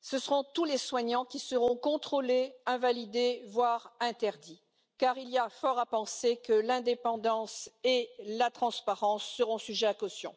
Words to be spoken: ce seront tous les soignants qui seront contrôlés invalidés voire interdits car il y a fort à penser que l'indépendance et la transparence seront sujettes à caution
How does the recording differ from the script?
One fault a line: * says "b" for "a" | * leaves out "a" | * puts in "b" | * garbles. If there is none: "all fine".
all fine